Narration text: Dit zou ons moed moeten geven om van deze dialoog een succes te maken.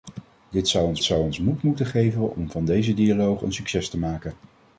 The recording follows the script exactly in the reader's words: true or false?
false